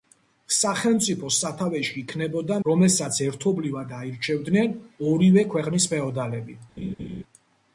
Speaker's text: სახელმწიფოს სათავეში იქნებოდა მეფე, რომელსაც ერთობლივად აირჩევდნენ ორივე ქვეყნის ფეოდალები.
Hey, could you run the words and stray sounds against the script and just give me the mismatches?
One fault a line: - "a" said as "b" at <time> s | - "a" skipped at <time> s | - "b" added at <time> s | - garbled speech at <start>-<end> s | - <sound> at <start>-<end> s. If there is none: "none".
- "მეფე" skipped at 2.6 s
- laugh at 6.8-7.2 s